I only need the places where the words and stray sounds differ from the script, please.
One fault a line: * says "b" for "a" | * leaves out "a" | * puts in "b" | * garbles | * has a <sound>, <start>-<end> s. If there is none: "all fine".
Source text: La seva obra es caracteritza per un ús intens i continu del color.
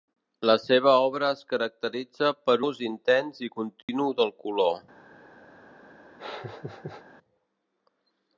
* leaves out "un"
* has a dropout, 3.8-3.9 s
* has a laugh, 6.2-7.0 s